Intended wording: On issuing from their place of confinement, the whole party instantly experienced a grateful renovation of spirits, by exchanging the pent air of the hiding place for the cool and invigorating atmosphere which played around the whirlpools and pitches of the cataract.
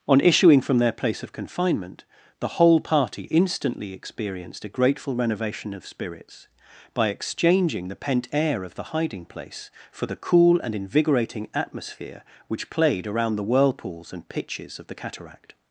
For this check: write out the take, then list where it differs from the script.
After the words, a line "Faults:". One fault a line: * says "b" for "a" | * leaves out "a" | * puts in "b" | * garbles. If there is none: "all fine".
On issuing from their place of confinement, the whole party instantly experienced a grateful renovation of spirits, by exchanging the pent air of the hiding place for the cool and invigorating atmosphere which played around the whirlpools and pitches of the cataract.
Faults:
all fine